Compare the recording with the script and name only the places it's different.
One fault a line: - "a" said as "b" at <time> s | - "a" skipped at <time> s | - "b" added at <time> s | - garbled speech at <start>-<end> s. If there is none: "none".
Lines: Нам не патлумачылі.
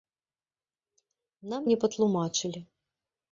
none